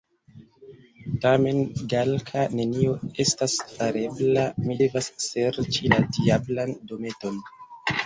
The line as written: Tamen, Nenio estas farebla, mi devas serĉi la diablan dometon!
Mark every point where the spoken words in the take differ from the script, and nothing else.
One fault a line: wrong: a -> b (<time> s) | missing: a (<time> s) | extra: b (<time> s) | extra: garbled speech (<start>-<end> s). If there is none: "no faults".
extra: Galka (1.9 s)